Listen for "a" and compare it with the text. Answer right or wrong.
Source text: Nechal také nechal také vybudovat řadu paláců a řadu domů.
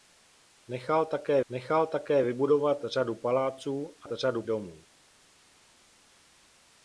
right